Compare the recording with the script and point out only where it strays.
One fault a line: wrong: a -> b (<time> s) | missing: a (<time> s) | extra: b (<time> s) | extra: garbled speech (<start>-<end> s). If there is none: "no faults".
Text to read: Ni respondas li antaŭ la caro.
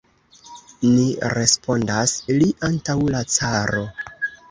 no faults